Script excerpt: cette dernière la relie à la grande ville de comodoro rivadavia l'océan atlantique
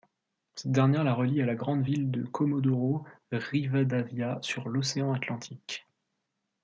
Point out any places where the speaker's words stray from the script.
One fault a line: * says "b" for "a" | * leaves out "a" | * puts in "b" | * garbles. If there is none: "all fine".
* puts in "sur"